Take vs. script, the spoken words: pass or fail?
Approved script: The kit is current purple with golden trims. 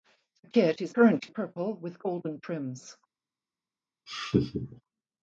pass